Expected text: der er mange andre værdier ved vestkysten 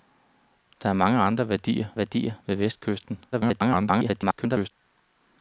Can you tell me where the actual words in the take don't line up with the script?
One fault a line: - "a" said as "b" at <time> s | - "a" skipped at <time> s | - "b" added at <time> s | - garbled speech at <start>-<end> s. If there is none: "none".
- "værdier" added at 2.0 s
- garbled speech at 3.3-4.7 s